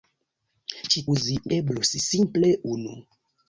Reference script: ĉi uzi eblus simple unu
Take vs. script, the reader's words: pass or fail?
pass